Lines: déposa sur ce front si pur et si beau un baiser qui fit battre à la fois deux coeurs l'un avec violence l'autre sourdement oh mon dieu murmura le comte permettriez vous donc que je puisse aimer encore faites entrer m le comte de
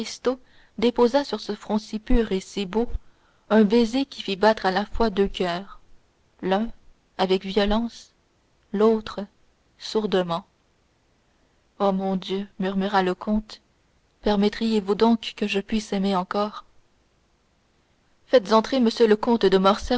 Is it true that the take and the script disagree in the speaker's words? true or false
false